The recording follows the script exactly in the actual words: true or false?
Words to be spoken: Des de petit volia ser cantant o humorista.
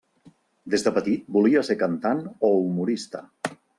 true